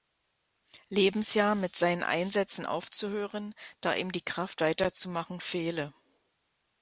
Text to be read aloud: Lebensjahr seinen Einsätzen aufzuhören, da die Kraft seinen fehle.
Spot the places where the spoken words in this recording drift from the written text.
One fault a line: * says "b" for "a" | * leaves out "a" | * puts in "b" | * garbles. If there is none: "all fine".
* puts in "mit"
* puts in "ihm"
* says "weiterzumachen" for "seinen"